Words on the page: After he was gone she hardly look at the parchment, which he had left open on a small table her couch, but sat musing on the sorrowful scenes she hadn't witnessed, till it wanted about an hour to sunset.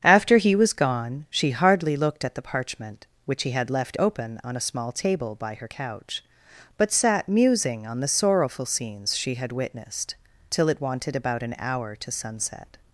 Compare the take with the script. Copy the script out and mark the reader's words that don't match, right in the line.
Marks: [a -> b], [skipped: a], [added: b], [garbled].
After he was gone she hardly [look -> looked] at the parchment, which he had left open on a small table [added: by] her couch, but sat musing on the sorrowful scenes she [hadn't -> had] witnessed, till it wanted about an hour to sunset.